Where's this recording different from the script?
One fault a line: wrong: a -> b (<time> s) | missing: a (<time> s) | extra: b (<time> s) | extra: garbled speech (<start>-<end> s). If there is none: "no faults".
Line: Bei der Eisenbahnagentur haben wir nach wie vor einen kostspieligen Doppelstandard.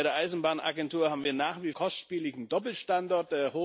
missing: vor einen (1.7 s)